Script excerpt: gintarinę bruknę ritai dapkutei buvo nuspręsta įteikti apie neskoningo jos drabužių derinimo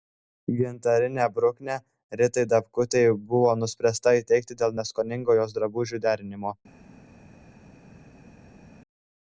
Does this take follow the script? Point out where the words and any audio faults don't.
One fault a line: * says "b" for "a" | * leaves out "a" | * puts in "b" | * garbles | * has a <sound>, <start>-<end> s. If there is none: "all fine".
* says "dėl" for "apie"